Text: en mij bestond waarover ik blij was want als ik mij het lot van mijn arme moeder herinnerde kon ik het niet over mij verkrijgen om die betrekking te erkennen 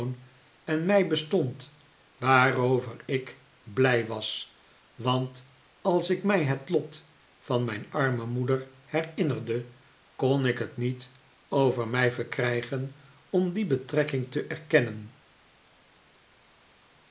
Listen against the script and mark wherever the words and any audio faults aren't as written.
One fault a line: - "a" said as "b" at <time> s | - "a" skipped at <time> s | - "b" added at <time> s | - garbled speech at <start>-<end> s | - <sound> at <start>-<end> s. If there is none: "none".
none